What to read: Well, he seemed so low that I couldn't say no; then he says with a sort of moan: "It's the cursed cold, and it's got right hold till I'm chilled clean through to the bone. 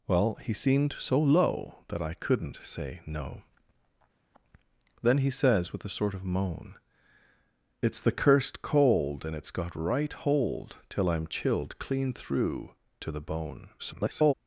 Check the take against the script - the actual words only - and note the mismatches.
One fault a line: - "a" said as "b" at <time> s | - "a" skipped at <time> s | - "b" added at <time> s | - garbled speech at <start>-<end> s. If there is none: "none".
- garbled speech at 13.8-14.3 s